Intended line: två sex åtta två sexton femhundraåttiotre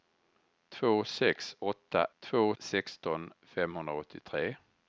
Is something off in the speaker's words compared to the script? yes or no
no